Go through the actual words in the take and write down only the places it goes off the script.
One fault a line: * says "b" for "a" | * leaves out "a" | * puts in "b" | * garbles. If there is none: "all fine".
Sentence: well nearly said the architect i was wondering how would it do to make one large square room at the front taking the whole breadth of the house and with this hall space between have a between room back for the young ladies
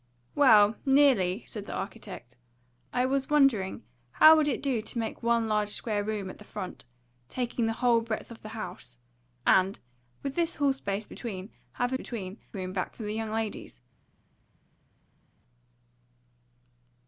all fine